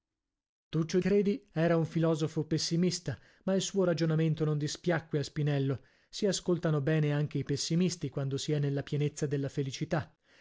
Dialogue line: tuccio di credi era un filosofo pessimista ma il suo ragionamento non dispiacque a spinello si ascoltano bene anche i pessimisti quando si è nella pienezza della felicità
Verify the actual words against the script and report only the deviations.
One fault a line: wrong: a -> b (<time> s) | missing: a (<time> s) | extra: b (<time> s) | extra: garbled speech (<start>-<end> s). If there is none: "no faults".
missing: di (1.0 s)